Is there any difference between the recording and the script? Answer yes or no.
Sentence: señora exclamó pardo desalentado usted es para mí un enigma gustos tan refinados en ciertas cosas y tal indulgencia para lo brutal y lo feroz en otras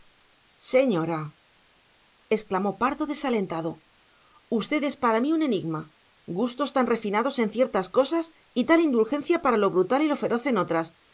no